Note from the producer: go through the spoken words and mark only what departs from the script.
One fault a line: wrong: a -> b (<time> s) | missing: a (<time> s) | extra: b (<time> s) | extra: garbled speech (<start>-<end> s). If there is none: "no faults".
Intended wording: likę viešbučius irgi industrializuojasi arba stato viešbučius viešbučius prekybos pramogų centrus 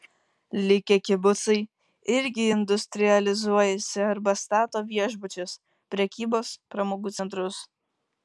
wrong: viešbučius -> kibucai (1.1 s)
missing: viešbučius (5.5 s)